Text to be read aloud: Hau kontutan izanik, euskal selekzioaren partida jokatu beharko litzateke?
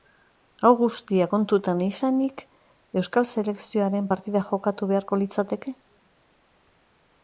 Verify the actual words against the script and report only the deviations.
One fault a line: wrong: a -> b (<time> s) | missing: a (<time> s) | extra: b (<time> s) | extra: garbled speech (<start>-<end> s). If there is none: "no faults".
extra: guztia (0.8 s)